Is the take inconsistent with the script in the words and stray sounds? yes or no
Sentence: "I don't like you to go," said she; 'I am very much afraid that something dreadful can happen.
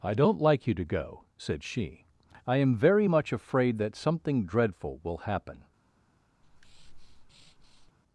yes